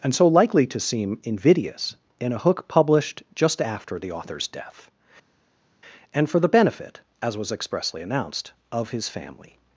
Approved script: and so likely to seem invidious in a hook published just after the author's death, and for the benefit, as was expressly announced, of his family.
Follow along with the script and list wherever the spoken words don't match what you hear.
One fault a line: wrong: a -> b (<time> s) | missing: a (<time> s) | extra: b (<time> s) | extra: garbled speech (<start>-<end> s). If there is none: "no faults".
no faults